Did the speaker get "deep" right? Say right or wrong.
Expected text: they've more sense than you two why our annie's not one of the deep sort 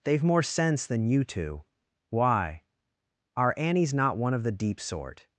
right